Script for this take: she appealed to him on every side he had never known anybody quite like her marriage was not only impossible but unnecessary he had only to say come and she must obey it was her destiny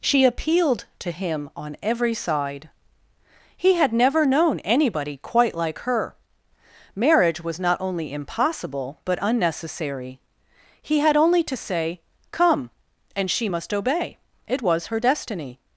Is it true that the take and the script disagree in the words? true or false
false